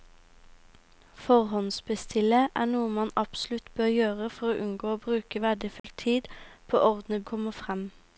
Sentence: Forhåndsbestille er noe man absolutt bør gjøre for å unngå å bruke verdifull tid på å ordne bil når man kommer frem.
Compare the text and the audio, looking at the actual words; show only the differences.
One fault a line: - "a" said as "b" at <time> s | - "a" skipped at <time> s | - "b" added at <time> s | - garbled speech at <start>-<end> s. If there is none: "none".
- "bil når man" skipped at 7.2 s